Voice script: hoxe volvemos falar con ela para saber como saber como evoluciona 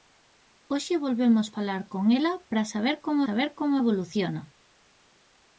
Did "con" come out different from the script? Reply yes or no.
no